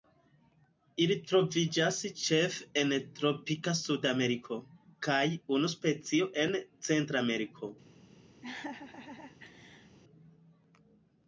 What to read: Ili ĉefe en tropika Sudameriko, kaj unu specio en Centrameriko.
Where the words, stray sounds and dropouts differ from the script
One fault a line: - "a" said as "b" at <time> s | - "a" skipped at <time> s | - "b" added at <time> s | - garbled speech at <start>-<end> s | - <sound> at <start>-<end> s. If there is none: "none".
- "troviĝas" added at 1.3 s
- laugh at 8.4-10.0 s